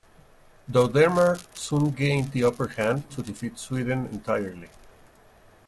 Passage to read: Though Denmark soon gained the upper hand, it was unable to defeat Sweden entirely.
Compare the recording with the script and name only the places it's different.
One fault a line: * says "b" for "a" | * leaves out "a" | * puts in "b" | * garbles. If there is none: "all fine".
* leaves out "it was unable"